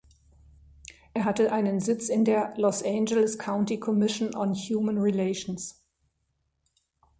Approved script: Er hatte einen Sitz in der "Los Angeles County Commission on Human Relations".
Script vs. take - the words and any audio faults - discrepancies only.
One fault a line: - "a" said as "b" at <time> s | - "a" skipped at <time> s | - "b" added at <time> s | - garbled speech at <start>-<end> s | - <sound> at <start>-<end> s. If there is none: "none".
none